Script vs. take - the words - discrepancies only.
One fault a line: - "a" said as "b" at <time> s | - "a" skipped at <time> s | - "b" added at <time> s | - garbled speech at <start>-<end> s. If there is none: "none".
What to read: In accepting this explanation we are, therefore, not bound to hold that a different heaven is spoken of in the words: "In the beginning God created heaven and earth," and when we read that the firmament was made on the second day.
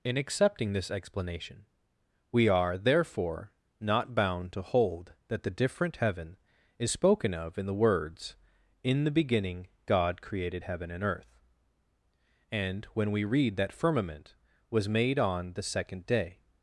- "a" said as "the" at 5.4 s
- "the" skipped at 13.7 s